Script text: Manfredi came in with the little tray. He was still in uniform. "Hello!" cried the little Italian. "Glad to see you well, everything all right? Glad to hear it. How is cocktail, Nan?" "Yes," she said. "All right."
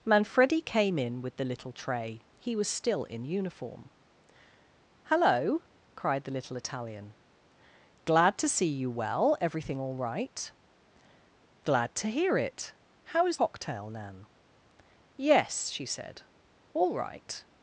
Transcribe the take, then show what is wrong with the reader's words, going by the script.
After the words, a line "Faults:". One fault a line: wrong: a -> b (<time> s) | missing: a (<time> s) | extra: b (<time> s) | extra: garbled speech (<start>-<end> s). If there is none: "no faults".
Manfredi came in with the little tray. He was still in uniform. "Hello!" cried the little Italian. "Glad to see you well, everything all right? Glad to hear it. How is cocktail, Nan?" "Yes," she said. "All right."
Faults:
no faults